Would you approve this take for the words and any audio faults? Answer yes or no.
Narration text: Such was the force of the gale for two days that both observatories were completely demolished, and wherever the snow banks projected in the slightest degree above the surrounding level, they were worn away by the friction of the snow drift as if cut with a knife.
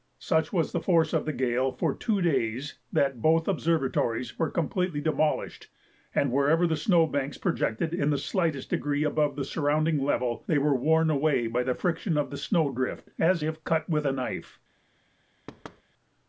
no